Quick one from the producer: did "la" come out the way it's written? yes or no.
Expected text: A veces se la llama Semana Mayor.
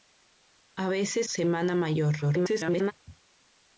no